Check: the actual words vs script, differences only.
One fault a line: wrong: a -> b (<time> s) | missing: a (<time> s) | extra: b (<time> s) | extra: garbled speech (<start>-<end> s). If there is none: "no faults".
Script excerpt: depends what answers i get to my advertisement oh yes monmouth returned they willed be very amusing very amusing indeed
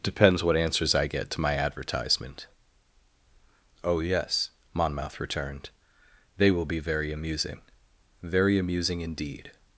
wrong: willed -> will (6.5 s)